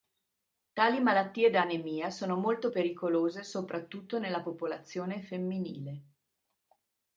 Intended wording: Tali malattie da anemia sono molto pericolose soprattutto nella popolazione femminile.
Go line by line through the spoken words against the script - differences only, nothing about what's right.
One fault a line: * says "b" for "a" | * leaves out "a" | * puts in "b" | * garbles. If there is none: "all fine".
all fine